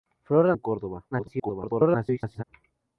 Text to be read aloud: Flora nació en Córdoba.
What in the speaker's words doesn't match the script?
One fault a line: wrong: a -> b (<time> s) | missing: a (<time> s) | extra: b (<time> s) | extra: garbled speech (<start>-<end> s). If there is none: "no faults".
missing: nació (0.6 s)
extra: garbled speech (1.1-2.4 s)